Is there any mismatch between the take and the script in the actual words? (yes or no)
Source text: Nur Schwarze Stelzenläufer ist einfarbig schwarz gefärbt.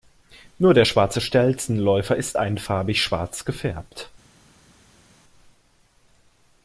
yes